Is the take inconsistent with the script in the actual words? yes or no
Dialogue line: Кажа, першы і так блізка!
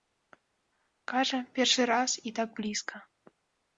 yes